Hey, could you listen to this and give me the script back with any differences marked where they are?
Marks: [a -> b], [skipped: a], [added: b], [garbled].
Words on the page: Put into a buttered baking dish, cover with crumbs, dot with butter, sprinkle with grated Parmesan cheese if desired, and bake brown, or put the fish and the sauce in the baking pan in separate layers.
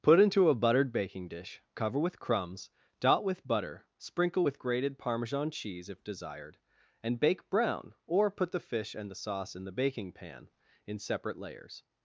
Put into a buttered baking dish, cover with crumbs, dot with butter, sprinkle with grated Parmesan cheese if desired, and bake brown, or put the fish and the sauce in the baking pan in separate layers.